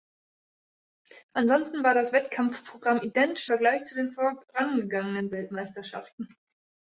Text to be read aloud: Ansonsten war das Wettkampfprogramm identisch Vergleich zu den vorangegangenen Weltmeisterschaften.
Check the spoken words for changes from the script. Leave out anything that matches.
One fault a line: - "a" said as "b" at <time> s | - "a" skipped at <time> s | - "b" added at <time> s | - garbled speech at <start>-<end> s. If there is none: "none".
none